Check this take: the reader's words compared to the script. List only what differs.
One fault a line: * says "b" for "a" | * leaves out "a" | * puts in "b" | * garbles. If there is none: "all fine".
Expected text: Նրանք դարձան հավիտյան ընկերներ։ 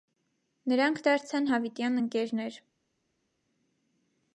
all fine